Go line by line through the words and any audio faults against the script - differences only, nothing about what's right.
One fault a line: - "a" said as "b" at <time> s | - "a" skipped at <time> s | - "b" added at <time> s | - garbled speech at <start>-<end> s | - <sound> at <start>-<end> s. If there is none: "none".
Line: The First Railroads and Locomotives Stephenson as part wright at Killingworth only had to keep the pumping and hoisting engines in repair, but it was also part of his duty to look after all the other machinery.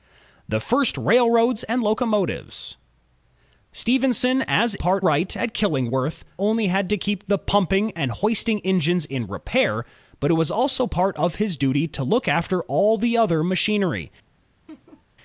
- laugh at 14.7-15.1 s